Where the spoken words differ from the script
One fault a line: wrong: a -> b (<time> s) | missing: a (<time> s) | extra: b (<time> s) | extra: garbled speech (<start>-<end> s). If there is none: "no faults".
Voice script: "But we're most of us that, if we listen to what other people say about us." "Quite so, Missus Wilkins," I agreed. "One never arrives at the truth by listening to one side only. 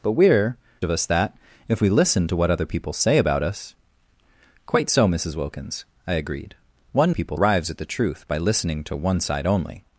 missing: most (0.6 s)
wrong: never -> people (7.1 s)